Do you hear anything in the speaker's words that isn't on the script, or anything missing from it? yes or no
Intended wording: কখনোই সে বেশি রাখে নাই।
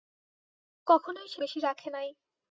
no